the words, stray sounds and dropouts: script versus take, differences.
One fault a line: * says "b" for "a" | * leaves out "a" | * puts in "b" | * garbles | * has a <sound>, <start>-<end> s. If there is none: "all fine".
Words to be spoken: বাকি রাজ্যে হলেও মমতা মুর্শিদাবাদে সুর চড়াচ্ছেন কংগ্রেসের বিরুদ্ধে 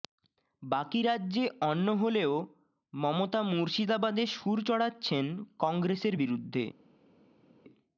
* puts in "অন্য"